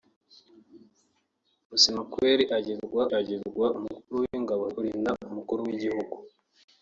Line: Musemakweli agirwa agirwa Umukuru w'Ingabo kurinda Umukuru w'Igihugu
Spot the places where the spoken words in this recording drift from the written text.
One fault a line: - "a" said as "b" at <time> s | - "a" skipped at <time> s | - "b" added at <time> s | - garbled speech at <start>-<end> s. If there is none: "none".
none